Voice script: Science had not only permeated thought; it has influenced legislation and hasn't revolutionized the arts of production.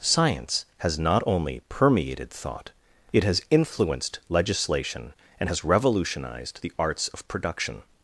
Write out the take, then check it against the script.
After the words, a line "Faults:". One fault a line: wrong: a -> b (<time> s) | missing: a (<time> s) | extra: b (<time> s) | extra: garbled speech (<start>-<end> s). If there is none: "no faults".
Science has not only permeated thought; it has influenced legislation and has revolutionized the arts of production.
Faults:
wrong: had -> has (0.8 s)
wrong: hasn't -> has (5.5 s)